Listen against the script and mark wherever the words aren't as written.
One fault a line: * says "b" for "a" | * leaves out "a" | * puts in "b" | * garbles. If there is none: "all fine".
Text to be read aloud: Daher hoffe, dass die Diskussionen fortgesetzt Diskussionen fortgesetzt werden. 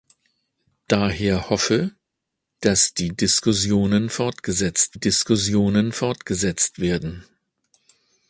all fine